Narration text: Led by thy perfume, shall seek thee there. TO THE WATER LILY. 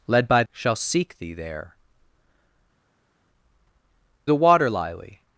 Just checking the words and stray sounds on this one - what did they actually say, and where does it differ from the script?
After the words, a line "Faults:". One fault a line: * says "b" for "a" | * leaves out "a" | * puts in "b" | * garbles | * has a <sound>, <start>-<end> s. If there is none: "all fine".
Led by shall seek thee there. THE WATER LILY.
Faults:
* leaves out "thy perfume"
* leaves out "TO"